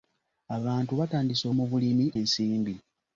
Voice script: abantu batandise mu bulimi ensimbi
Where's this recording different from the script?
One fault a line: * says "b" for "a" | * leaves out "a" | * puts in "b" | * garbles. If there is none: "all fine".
all fine